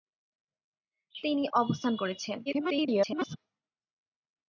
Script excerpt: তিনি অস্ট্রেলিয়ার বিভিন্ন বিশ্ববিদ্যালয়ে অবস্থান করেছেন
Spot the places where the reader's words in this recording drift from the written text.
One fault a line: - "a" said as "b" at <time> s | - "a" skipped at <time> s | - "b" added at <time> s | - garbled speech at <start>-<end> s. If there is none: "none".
- "অস্ট্রেলিয়ার বিভিন্ন বিশ্ববিদ্যালয়ে" skipped at 1.4 s
- garbled speech at 2.5-3.4 s